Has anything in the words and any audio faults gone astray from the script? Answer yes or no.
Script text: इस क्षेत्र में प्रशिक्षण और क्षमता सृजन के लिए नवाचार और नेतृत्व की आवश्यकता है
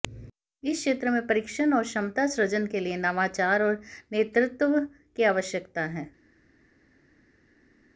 no